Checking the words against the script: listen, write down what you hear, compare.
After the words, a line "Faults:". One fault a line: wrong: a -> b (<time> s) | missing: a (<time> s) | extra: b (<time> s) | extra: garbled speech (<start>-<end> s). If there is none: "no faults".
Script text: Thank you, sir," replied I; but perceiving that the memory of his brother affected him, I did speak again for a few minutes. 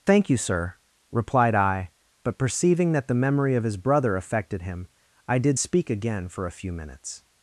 Thank you, sir," replied I; but perceiving that the memory of his brother affected him, I did speak again for a few minutes.
Faults:
no faults